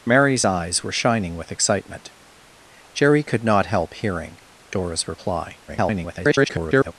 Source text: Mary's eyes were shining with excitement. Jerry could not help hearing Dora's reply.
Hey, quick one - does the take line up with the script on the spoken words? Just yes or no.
no